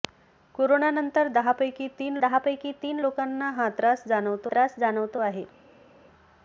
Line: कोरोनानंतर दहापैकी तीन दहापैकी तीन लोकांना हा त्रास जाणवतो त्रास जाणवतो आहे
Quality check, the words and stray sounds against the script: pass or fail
pass